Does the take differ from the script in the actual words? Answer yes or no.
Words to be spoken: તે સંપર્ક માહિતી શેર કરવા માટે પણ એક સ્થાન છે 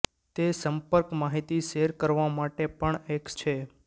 yes